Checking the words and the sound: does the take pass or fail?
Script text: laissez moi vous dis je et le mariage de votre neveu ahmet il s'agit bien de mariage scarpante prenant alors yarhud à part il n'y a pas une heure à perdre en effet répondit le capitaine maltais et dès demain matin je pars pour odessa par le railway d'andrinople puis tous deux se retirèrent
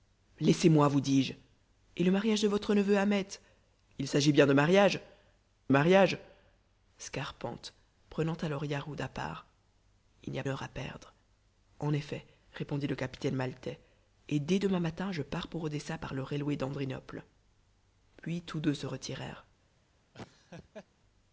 fail